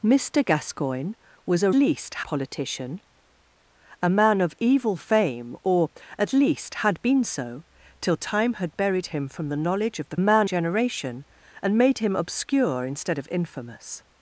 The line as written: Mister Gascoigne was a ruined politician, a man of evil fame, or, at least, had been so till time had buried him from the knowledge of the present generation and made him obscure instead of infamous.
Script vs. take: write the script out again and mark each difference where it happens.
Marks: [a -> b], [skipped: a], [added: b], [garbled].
Mister Gascoigne was a [ruined -> least] politician, a man of evil fame, or, at least, had been so till time had buried him from the knowledge of the [present -> man] generation and made him obscure instead of infamous.